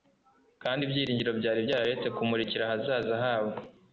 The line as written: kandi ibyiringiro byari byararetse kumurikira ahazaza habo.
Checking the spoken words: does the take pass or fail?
pass